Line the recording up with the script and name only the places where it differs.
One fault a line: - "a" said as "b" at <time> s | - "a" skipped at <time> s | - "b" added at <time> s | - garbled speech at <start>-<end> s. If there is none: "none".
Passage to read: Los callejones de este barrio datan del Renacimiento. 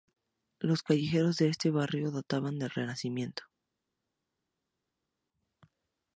none